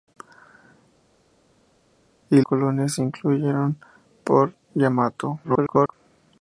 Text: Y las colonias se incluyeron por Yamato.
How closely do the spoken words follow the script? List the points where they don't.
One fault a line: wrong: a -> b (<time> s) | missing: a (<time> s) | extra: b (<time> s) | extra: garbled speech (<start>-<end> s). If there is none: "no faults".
missing: las (2.4 s)
extra: garbled speech (5.4-5.9 s)